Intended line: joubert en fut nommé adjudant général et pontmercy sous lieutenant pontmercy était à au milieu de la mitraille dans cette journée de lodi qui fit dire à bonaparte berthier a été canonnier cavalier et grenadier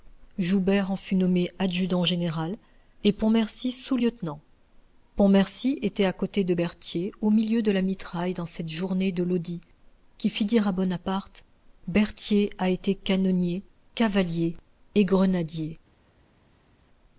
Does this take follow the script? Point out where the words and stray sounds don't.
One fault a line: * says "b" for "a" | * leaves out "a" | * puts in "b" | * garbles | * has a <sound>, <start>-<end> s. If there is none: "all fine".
* puts in "côté de berthier"